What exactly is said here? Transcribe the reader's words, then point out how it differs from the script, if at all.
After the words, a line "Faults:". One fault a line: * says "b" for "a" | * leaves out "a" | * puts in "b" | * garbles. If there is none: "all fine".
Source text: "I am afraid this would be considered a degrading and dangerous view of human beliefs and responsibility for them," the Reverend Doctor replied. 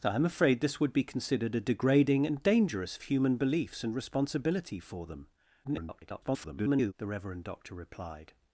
"I am afraid this would be considered a degrading and dangerous human beliefs and responsibility for them," [garbled] the Reverend Doctor replied.
Faults:
* leaves out "view of"
* garbles